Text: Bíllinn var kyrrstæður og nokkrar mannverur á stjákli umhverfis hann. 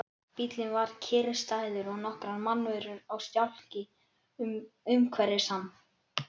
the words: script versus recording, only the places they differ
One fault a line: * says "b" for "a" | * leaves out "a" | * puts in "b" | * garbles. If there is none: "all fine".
all fine